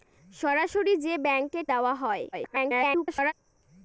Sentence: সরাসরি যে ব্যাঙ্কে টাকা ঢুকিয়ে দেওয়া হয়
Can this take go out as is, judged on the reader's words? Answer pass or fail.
fail